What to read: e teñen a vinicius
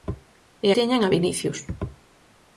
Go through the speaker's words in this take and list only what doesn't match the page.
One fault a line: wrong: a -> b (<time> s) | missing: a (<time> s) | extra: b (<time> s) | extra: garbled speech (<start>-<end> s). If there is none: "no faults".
no faults